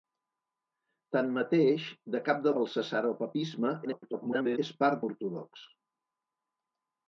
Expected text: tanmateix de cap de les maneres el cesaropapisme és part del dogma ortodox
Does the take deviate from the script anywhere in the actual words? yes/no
yes